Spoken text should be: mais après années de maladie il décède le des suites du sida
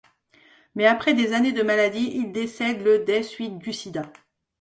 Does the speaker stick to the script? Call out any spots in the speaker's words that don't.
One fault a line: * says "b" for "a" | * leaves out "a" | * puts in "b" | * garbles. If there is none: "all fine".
* puts in "des"